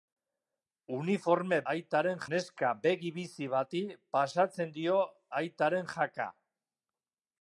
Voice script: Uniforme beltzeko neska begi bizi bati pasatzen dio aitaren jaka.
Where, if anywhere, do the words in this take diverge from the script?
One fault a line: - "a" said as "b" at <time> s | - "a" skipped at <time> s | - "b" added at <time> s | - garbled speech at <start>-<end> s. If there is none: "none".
- "beltzeko" said as "aitaren" at 1.7 s